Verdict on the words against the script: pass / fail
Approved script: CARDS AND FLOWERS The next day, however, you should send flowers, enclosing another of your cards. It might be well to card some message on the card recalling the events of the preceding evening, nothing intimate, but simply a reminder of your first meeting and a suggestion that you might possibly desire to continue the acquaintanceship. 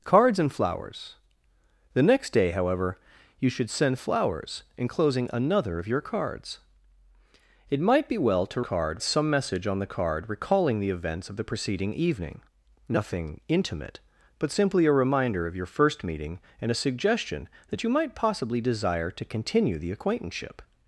pass